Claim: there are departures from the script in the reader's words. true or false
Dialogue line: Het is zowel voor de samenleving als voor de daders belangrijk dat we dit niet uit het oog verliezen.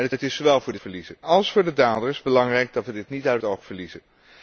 true